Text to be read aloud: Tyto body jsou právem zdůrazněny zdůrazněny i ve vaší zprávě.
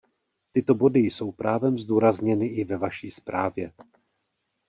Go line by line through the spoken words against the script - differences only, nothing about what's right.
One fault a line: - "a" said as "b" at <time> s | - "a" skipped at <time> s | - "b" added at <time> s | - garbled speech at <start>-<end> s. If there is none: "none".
- "zdůrazněny" skipped at 2.5 s